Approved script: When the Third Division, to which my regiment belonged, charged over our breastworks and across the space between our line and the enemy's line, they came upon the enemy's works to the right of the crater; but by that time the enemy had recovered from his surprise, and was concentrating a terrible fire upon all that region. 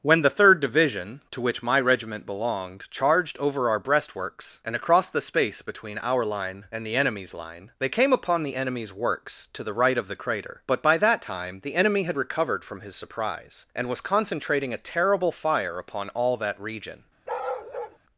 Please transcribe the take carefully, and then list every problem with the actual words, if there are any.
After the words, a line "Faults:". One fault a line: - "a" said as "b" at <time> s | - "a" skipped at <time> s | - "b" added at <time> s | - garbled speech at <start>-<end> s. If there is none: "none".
When the Third Division, to which my regiment belonged, charged over our breastworks and across the space between our line and the enemy's line, they came upon the enemy's works to the right of the crater; but by that time the enemy had recovered from his surprise, and was concentrating a terrible fire upon all that region.
Faults:
none